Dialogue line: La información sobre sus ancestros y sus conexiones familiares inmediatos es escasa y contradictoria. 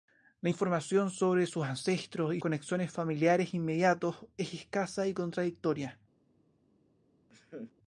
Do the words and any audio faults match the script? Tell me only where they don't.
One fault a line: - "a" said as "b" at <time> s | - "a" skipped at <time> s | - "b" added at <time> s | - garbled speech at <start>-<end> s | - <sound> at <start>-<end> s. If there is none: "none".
- "sus" skipped at 2.4 s
- laugh at 7.3-7.7 s